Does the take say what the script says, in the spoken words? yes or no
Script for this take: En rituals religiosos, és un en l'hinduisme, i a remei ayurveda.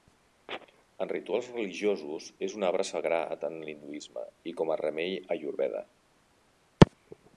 no